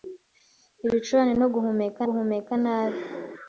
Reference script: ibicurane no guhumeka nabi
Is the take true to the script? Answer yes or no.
no